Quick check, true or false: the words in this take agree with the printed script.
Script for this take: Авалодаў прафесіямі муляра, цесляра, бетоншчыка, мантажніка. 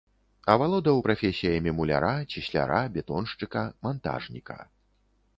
true